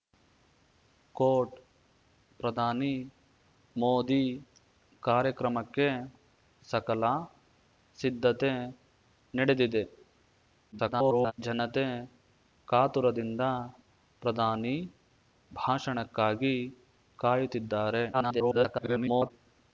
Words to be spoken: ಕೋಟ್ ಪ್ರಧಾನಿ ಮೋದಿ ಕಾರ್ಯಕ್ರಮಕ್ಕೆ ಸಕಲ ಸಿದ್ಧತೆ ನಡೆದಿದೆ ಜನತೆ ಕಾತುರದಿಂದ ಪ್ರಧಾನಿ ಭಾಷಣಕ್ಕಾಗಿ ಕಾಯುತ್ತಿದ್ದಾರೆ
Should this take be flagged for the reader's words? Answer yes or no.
yes